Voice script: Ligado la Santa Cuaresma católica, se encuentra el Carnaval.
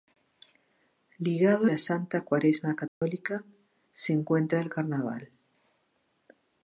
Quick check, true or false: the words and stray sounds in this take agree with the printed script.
false